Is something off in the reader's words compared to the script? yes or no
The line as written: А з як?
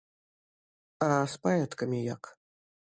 yes